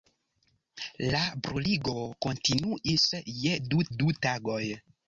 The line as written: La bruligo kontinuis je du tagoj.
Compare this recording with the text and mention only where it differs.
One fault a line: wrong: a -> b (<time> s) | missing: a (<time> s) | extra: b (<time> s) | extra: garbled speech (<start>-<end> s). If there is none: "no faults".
extra: du (4.0 s)